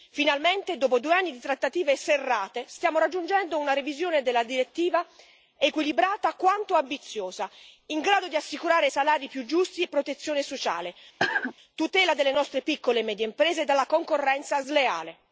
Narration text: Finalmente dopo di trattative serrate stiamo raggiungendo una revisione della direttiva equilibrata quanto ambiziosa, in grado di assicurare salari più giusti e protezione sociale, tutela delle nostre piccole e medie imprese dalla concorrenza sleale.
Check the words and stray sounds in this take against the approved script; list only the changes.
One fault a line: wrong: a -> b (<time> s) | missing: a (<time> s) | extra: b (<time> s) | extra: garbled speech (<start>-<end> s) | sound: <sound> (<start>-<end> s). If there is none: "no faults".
extra: due anni (1.0 s)
sound: cough (11.2-11.5 s)